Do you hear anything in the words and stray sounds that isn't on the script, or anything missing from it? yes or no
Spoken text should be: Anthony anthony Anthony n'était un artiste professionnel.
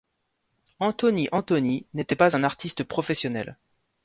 yes